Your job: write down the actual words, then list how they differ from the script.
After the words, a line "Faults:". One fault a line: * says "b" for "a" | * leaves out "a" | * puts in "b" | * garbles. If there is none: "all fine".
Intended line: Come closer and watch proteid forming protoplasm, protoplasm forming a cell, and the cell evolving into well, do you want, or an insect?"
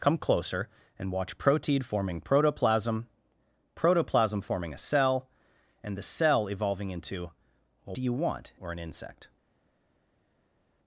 Come closer and watch proteid forming protoplasm, protoplasm forming a cell, and the cell evolving into well, do you want, or an insect?"
Faults:
all fine